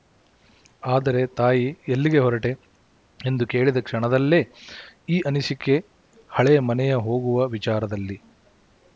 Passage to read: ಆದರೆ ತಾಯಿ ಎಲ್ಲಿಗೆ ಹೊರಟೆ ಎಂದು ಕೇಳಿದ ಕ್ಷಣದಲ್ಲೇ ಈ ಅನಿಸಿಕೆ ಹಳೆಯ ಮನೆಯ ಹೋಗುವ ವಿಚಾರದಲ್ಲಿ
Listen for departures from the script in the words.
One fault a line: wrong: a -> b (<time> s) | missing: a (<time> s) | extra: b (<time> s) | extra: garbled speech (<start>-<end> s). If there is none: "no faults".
no faults